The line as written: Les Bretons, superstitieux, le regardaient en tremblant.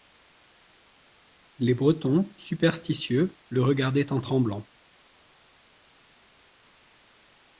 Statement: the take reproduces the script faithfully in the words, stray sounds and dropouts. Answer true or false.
true